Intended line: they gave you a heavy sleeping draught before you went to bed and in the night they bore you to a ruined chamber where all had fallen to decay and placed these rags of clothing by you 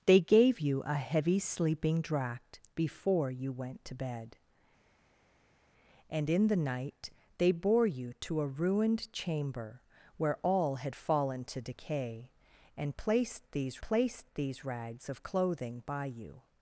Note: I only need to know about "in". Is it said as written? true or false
true